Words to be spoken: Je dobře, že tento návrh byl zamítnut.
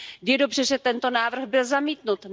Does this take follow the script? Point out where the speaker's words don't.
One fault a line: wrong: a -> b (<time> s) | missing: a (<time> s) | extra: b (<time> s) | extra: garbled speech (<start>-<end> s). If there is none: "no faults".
no faults